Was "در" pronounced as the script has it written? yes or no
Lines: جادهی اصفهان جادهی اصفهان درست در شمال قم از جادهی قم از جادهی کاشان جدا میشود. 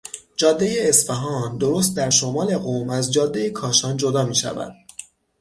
yes